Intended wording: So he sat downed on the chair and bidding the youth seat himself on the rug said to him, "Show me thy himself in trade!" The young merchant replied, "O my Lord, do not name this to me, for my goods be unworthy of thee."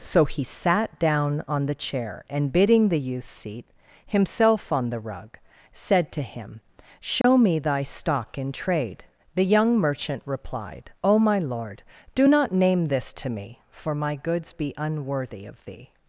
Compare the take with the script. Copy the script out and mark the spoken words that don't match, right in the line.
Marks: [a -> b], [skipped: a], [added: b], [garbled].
So he sat [downed -> down] on the chair and bidding the youth seat himself on the rug said to him, "Show me thy [himself -> stock] in trade!" The young merchant replied, "O my Lord, do not name this to me, for my goods be unworthy of thee."